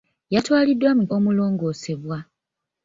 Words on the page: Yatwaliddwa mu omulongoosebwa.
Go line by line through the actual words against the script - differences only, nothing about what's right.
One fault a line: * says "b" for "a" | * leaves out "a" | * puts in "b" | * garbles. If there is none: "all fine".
all fine